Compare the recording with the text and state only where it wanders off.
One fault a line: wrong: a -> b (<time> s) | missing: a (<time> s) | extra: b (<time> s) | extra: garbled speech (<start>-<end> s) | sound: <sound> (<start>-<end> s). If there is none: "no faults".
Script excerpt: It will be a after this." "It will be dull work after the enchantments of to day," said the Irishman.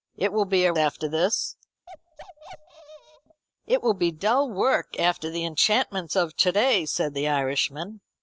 sound: bark (1.9-3.4 s)